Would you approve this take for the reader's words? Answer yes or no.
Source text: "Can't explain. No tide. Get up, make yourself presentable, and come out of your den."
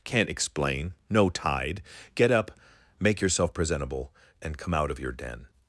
yes